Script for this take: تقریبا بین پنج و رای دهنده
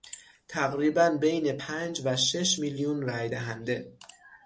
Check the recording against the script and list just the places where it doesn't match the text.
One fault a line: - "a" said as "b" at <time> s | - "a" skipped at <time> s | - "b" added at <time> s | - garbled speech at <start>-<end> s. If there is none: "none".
- "شش میلیون" added at 2.2 s